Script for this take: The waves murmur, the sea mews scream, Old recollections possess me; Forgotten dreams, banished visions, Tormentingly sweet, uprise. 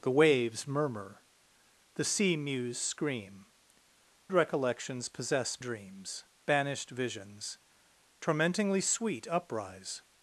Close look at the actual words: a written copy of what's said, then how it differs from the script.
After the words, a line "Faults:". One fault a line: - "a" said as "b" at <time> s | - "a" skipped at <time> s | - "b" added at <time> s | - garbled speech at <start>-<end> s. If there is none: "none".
The waves murmur, the sea mews scream, Recollections possess dreams, banished visions, Tormentingly sweet, uprise.
Faults:
- "Old" skipped at 3.5 s
- "me Forgotten" skipped at 5.6 s